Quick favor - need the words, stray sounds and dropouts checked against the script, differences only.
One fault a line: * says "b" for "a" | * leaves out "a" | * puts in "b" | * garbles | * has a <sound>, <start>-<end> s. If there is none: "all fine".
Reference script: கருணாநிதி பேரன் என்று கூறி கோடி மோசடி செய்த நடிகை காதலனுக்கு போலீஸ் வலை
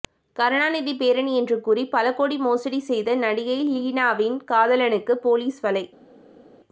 * puts in "பல"
* puts in "லீனாவின்"